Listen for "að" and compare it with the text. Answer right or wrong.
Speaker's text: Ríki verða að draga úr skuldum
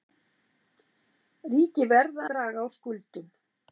wrong